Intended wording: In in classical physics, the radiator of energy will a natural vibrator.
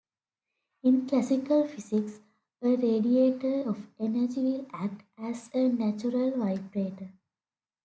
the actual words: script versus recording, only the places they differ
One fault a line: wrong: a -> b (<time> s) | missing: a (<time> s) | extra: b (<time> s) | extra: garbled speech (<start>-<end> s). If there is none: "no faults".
missing: in (1.1 s)
wrong: the -> a (2.6 s)
extra: act as (4.7 s)